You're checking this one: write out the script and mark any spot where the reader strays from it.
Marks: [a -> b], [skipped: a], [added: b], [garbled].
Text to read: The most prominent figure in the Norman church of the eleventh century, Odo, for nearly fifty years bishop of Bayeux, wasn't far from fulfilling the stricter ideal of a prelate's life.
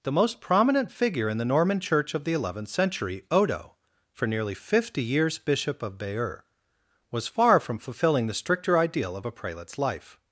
The most prominent figure in the Norman church of the eleventh century, Odo, for nearly fifty years bishop of Bayeux, [wasn't -> was] far from fulfilling the stricter ideal of a prelate's life.